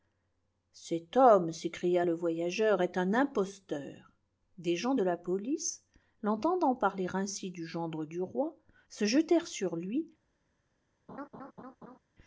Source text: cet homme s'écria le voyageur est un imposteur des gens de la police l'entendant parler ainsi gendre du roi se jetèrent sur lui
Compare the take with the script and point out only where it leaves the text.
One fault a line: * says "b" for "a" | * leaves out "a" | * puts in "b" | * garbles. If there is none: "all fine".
* puts in "du"